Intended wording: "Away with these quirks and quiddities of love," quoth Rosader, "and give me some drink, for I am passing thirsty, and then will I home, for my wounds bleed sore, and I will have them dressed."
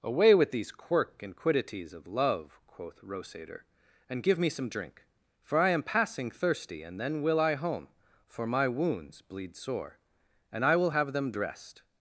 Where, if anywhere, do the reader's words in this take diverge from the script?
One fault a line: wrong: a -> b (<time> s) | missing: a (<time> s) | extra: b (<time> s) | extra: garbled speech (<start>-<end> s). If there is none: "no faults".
wrong: quirks -> quirk (0.7 s)